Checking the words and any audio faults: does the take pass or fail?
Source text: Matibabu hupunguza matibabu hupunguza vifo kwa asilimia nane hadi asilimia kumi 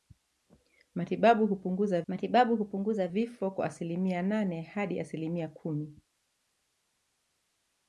pass